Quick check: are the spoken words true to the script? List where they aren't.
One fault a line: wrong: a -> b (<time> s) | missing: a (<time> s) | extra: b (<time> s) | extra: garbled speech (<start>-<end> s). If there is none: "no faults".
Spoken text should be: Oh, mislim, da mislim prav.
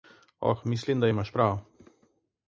wrong: mislim -> imaš (1.1 s)